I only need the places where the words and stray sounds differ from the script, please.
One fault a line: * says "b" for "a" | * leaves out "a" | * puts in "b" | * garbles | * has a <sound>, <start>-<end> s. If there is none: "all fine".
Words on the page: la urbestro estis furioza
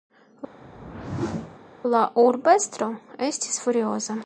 * has a whoosh, 0.6-1.6 s